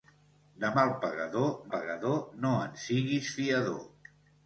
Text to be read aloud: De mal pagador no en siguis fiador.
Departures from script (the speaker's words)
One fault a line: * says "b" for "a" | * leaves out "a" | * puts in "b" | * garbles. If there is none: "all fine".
* puts in "pagador"